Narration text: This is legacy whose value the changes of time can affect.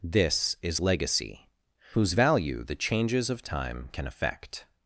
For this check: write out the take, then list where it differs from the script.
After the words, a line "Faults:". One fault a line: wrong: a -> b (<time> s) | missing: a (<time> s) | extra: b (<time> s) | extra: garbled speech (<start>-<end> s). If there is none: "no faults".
This is legacy whose value the changes of time can affect.
Faults:
no faults